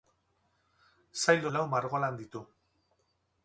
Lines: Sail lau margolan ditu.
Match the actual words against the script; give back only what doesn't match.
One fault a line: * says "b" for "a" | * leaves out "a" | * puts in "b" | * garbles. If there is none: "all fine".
all fine